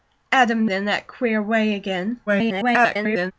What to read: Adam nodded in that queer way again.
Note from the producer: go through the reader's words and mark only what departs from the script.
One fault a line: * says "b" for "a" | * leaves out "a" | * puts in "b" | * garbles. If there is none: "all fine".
* leaves out "nodded"
* garbles